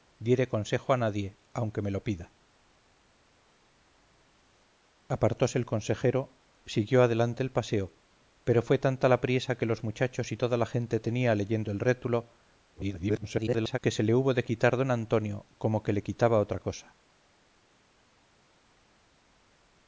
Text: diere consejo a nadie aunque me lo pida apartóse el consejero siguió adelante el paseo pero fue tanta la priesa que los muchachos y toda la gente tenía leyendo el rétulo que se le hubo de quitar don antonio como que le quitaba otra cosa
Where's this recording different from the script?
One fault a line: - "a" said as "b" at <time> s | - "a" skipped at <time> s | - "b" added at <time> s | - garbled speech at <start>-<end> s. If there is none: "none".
- garbled speech at 12.7-13.8 s